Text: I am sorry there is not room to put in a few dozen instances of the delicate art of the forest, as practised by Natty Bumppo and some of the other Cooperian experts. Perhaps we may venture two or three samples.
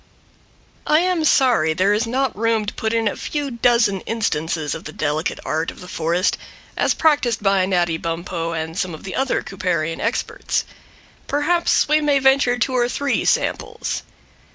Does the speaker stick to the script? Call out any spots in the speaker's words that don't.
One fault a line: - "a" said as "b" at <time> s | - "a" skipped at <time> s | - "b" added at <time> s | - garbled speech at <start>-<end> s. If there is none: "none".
none